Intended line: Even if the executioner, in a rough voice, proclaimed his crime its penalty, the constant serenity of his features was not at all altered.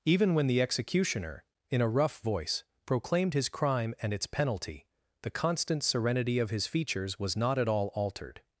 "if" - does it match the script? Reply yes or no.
no